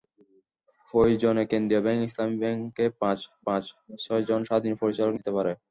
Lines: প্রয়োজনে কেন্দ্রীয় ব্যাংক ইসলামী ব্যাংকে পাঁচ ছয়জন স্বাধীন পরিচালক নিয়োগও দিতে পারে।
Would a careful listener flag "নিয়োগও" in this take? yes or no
yes